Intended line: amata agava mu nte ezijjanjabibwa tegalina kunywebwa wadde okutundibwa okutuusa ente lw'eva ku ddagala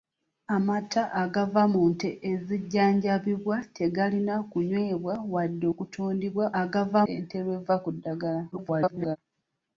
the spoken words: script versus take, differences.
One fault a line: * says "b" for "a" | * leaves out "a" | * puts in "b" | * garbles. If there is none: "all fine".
* says "agava" for "okutuusa"
* garbles